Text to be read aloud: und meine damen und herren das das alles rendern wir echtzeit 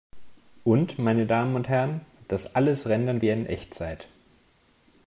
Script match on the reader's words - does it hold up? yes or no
no